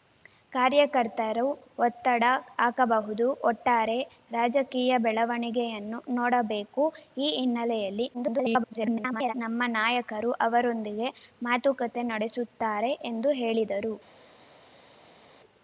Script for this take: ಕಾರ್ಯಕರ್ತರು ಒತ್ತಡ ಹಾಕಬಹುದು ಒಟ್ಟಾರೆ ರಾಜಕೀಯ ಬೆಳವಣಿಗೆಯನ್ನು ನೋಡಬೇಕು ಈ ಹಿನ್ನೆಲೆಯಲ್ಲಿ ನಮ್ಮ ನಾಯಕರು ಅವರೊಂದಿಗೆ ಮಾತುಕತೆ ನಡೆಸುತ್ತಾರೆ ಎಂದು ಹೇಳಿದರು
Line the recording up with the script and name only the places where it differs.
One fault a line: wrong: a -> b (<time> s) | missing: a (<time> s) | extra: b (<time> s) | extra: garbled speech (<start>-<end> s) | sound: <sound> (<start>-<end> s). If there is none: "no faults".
extra: garbled speech (8.1-9.3 s)